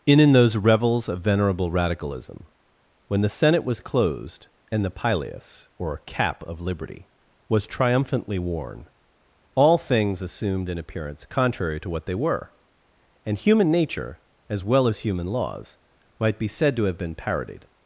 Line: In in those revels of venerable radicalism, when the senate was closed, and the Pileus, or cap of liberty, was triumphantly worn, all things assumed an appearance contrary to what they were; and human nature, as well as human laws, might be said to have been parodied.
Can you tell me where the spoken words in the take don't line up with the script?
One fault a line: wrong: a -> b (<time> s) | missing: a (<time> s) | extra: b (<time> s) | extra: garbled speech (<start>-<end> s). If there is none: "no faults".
no faults